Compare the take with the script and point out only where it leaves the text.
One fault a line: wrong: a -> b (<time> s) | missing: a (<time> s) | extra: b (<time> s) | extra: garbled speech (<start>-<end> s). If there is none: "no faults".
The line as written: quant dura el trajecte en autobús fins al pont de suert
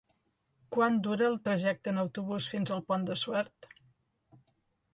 no faults